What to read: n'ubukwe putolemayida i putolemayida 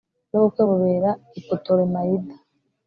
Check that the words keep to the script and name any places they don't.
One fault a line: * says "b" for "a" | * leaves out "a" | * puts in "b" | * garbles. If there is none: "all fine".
* says "bubera" for "putolemayida"